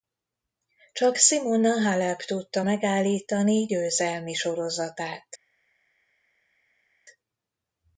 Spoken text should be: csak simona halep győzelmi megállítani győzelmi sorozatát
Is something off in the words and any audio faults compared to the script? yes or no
yes